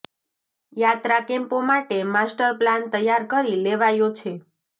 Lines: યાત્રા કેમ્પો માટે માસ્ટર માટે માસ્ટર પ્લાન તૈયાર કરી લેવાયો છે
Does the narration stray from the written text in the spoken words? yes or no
yes